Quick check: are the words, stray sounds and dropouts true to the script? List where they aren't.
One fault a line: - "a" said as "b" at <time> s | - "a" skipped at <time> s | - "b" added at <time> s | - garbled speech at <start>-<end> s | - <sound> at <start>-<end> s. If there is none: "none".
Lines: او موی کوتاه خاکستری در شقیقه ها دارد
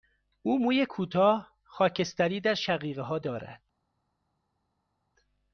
none